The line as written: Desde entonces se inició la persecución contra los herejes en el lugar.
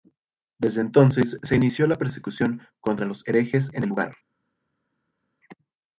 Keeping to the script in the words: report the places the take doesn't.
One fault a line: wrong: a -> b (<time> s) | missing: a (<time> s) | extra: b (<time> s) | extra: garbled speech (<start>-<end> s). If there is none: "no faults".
no faults